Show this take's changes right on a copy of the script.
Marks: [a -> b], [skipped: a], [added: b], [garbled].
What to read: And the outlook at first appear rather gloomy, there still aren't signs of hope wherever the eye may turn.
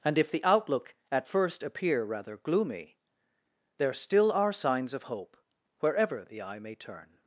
And [added: if] the outlook at first appear rather gloomy, there still [aren't -> are] signs of hope wherever the eye may turn.